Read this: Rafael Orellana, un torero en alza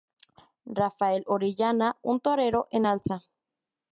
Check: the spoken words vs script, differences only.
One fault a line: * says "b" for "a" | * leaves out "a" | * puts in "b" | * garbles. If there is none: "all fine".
all fine